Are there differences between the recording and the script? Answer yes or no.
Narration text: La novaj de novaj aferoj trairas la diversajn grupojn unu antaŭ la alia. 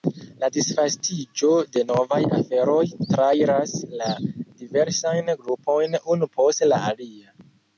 yes